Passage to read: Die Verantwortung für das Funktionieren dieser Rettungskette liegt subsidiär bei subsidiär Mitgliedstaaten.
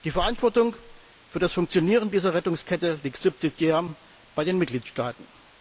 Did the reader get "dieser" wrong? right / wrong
right